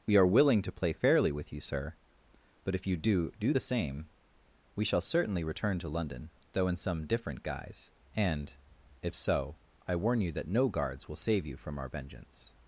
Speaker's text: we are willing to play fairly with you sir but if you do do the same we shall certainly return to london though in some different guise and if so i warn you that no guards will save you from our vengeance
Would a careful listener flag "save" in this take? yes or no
no